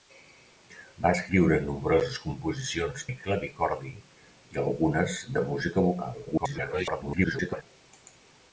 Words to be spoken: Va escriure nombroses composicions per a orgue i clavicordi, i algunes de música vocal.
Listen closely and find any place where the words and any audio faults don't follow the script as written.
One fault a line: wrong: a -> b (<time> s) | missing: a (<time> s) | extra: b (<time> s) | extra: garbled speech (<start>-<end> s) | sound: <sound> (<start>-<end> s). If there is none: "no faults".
missing: per a orgue (3.0 s)
extra: garbled speech (6.3-7.6 s)